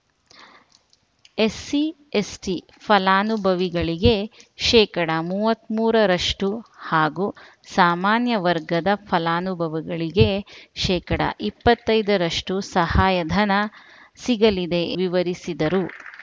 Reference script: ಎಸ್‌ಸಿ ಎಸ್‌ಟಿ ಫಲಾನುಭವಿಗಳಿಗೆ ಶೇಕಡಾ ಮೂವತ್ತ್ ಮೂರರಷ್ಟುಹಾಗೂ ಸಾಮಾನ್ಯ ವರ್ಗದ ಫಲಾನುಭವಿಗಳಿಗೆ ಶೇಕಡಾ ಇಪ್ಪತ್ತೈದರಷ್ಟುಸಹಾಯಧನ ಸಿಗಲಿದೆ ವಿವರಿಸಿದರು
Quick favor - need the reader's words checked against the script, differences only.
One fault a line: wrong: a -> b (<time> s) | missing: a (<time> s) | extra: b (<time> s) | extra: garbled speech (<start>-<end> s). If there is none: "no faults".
no faults